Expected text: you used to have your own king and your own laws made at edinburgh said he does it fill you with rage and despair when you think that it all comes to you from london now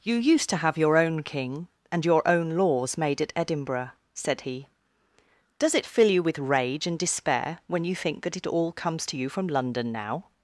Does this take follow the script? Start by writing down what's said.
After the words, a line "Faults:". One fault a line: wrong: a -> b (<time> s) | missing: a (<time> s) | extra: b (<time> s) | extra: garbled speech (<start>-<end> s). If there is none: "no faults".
you used to have your own king and your own laws made at edinburgh said he does it fill you with rage and despair when you think that it all comes to you from london now
Faults:
no faults